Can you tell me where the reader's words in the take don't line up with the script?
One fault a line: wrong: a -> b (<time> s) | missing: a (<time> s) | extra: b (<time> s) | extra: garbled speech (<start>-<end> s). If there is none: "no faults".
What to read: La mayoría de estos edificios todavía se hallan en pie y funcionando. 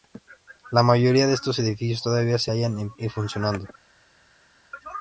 missing: pie (2.9 s)